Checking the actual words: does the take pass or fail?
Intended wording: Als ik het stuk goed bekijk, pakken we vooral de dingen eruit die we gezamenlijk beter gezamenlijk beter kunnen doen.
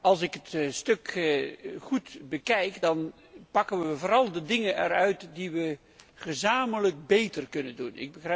fail